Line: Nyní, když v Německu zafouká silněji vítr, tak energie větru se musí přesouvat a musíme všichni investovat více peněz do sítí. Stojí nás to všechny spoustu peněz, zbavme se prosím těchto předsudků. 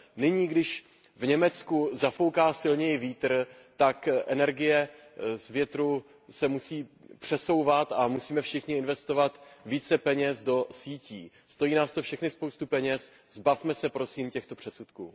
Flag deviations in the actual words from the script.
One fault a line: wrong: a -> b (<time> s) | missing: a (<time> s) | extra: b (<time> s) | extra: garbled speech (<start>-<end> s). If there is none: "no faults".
extra: z (5.3 s)